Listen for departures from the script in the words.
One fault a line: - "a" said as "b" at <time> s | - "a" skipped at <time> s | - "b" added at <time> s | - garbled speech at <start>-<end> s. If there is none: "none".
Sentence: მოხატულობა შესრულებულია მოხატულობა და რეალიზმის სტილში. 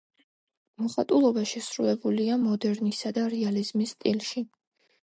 - "მოხატულობა" said as "მოდერნისა" at 2.5 s